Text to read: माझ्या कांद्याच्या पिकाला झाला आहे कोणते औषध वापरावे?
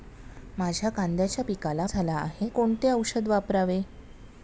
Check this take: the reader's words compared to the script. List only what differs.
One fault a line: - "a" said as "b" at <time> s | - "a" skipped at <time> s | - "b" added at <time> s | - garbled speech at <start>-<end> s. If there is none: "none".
none